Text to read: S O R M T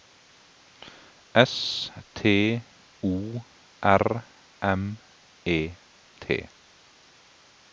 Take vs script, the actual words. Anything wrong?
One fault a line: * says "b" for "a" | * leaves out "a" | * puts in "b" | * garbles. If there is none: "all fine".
* puts in "T"
* puts in "E"